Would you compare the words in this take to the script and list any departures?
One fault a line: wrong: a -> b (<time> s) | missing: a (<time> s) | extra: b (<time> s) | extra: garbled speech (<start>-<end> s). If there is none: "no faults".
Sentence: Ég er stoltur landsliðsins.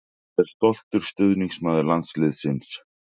extra: stuðningsmaður (1.1 s)